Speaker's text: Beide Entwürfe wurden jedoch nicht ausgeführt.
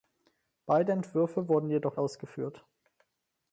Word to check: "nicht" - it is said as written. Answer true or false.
false